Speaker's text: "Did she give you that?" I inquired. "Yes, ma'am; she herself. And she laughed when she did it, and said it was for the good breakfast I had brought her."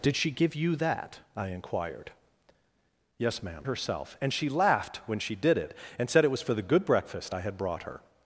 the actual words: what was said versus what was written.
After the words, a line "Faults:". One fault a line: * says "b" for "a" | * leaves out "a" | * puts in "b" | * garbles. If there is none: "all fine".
"Did she give you that?" I inquired. "Yes, ma'am; herself. And she laughed when she did it, and said it was for the good breakfast I had brought her."
Faults:
* leaves out "she"